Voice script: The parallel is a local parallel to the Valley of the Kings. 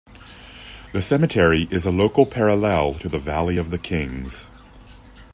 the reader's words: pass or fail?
fail